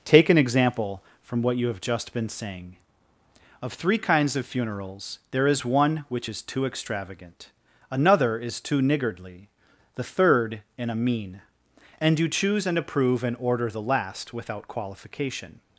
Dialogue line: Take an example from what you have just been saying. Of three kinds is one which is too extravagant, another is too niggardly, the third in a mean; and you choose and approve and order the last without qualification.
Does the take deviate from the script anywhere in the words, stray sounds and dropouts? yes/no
yes